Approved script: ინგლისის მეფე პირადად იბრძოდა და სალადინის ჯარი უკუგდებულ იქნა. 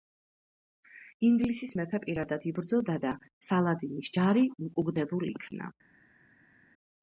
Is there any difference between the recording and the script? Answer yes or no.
no